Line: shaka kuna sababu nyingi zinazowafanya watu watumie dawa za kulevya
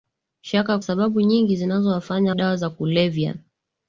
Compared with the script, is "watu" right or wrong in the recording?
wrong